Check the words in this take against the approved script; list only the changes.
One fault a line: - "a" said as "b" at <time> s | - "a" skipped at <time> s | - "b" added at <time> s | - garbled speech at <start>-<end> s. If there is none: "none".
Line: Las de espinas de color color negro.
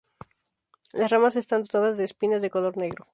- "ramas están dotadas" added at 1.1 s
- "color" skipped at 2.8 s